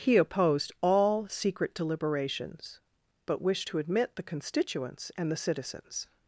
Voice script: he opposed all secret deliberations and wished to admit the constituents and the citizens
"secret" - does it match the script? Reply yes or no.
yes